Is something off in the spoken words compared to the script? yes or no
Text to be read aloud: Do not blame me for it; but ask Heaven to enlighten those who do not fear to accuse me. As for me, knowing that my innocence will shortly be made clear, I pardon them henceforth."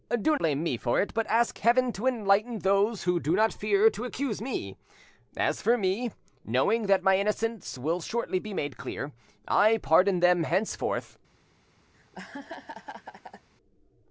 yes